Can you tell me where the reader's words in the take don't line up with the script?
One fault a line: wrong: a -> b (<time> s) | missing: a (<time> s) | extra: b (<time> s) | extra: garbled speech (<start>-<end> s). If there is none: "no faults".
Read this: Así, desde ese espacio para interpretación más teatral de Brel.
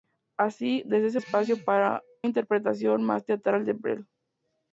no faults